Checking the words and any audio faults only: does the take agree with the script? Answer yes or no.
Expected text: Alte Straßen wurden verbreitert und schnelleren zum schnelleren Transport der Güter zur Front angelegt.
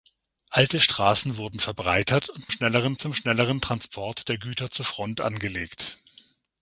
yes